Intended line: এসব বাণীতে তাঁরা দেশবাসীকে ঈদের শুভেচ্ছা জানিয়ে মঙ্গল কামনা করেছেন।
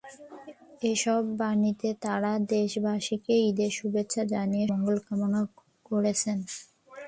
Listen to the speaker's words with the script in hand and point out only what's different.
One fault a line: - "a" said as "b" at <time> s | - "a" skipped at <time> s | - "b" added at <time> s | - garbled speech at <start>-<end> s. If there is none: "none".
none